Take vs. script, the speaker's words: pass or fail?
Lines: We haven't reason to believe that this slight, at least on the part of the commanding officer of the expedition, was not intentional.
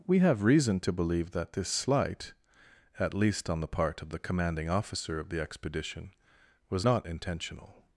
fail